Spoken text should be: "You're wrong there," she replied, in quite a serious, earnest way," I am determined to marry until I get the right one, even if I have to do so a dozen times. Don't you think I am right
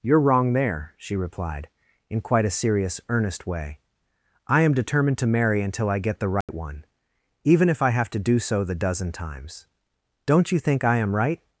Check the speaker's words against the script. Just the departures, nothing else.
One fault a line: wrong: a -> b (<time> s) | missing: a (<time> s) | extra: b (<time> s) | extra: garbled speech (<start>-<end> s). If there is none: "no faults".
wrong: a -> the (8.6 s)